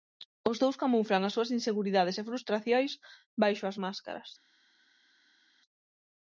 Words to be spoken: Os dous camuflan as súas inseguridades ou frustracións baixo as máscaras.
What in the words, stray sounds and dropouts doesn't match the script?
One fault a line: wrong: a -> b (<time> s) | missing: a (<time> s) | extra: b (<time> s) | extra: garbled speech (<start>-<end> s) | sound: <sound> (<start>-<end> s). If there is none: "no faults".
wrong: ou -> e (2.2 s)